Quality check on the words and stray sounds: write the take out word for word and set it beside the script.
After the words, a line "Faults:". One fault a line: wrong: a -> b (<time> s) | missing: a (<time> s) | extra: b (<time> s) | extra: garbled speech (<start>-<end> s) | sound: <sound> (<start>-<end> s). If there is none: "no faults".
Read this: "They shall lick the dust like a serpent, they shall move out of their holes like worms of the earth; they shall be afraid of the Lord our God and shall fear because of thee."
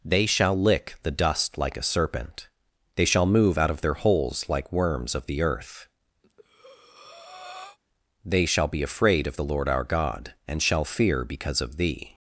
"They shall lick the dust like a serpent, they shall move out of their holes like worms of the earth; they shall be afraid of the Lord our God and shall fear because of thee."
Faults:
sound: breath (6.2-7.8 s)